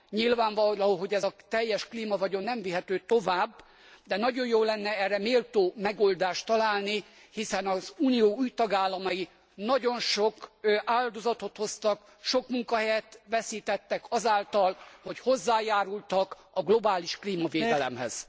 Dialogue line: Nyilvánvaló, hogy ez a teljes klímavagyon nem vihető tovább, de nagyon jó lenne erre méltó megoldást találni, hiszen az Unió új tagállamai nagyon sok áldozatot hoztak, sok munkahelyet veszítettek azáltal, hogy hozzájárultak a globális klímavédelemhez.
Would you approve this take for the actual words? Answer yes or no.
yes